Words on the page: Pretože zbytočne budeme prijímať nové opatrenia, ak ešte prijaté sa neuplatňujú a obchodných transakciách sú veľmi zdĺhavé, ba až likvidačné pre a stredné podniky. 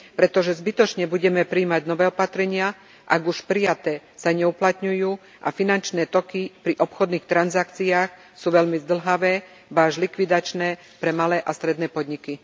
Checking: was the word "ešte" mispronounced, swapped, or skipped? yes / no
yes